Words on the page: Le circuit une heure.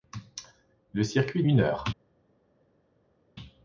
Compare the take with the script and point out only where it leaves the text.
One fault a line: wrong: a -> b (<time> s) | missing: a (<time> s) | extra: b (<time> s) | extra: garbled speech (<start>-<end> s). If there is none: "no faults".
no faults